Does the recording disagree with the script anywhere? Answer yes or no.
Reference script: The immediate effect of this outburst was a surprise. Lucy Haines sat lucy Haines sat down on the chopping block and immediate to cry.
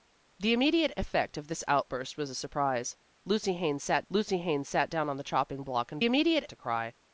no